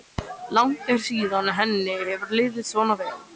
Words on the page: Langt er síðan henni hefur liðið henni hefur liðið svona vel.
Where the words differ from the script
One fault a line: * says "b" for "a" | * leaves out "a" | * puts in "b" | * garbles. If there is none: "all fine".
* leaves out "henni hefur liðið"